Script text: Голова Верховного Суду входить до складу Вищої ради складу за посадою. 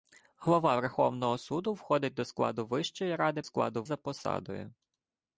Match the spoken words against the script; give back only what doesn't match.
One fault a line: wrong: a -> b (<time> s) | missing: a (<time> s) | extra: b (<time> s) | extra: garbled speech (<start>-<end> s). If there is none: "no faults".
no faults